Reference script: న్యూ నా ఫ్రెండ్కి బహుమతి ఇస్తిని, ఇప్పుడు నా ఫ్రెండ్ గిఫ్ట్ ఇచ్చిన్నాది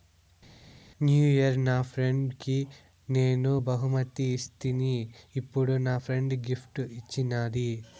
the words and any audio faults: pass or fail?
fail